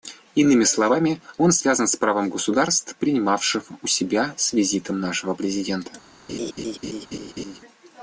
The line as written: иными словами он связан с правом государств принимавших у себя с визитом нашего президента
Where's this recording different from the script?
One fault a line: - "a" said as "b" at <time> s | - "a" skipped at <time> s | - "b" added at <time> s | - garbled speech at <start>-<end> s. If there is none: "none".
none